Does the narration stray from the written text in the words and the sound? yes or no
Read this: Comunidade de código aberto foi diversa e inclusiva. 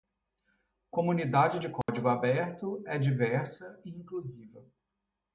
yes